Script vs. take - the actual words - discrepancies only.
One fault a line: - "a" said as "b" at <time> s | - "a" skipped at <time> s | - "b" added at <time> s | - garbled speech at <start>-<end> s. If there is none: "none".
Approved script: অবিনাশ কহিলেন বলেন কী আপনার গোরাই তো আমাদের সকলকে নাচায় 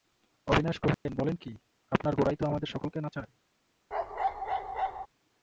none